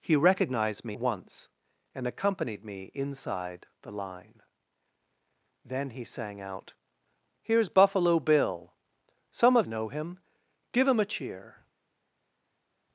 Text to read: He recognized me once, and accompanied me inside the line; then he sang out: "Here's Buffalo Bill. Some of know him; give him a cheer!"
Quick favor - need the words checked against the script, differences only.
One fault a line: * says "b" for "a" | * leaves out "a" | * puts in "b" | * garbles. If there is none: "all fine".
all fine